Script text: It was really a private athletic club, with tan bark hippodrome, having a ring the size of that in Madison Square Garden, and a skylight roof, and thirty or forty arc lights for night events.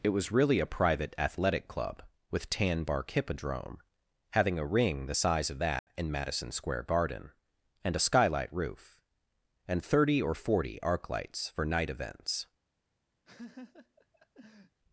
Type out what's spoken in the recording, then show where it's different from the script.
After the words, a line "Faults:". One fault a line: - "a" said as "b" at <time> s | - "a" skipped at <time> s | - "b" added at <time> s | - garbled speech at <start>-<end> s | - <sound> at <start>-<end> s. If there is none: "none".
It was really a private athletic club, with tan bark hippodrome, having a ring the size of that in Madison Square Garden, and a skylight roof, and thirty or forty arc lights for night events.
Faults:
- dropout at 5.8-5.9 s
- laugh at 13.2-14.8 s